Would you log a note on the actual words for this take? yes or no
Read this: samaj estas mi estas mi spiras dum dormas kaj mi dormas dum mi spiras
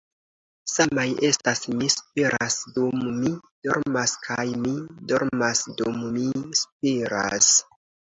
yes